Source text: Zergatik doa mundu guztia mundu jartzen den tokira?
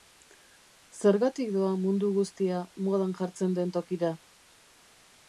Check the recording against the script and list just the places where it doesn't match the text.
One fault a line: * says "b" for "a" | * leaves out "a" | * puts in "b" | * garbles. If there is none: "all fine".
* says "modan" for "mundu"